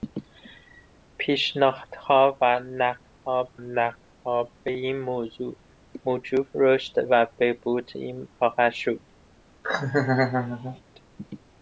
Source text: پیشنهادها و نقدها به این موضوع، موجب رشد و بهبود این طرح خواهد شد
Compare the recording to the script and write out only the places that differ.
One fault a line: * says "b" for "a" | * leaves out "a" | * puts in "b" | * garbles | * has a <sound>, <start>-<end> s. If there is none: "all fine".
* puts in "نقدها"
* leaves out "طرح"
* has a laugh, 9.6-10.8 s